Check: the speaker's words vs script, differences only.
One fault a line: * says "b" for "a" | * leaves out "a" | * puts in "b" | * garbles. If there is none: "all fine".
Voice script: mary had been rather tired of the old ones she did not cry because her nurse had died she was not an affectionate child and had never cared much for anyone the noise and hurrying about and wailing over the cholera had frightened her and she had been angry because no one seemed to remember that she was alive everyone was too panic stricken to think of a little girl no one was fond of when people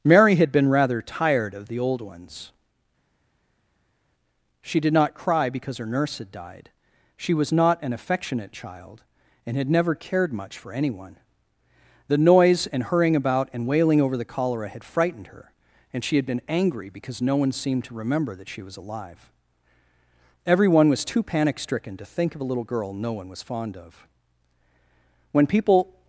all fine